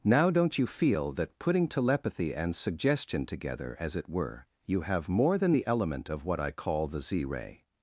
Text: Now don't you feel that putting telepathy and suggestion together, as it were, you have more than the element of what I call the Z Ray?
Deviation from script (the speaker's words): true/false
false